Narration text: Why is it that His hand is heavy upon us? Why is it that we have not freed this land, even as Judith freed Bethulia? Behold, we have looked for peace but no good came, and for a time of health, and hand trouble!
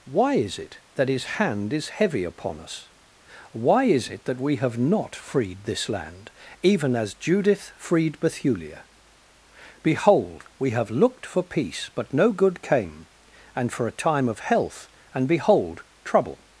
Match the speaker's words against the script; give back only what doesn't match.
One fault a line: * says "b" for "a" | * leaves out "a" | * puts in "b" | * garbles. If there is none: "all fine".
* says "behold" for "hand"